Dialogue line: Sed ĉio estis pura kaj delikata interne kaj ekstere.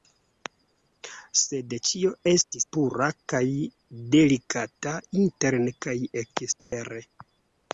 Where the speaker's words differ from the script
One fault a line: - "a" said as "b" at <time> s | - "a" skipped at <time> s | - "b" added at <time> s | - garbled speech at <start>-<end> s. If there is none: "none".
none